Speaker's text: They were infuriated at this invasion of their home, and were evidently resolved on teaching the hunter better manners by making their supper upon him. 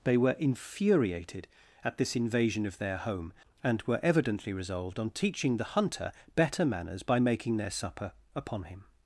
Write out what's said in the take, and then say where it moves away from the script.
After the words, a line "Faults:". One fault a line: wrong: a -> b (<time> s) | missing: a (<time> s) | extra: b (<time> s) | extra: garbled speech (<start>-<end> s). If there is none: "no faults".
They were infuriated at this invasion of their home, and were evidently resolved on teaching the hunter better manners by making their supper upon him.
Faults:
no faults